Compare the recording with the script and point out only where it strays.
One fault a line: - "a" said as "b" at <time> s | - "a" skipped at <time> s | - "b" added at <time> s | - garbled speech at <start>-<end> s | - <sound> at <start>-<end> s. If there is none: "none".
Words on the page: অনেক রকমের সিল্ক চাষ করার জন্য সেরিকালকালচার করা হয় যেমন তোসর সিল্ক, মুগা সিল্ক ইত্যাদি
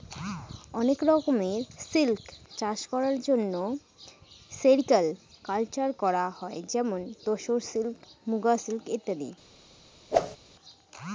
- whoosh at 10.1-10.4 s